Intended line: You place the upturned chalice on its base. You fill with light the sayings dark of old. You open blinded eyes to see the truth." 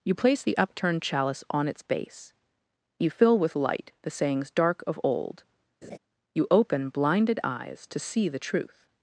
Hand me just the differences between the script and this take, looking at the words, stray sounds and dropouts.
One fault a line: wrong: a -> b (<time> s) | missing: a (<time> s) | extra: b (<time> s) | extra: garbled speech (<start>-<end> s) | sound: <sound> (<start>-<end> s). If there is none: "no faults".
sound: laugh (5.8-6.0 s)